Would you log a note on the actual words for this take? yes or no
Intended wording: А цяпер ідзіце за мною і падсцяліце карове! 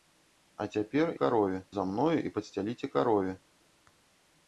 yes